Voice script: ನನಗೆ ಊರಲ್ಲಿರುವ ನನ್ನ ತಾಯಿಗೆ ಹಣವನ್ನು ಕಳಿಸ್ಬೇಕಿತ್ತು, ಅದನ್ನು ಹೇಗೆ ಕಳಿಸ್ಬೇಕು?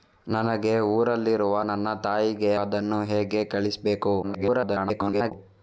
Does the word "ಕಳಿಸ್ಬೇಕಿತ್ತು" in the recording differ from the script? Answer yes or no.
yes